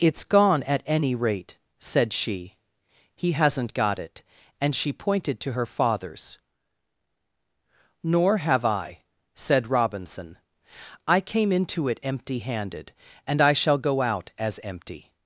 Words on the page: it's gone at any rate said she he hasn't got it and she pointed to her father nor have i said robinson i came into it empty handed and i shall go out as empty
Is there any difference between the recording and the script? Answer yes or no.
yes